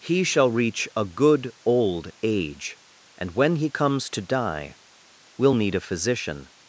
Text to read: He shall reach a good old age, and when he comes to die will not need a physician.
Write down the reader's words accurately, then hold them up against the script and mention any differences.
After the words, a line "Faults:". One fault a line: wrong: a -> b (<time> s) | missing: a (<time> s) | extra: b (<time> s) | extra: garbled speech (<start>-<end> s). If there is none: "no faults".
He shall reach a good old age, and when he comes to die will need a physician.
Faults:
missing: not (5.5 s)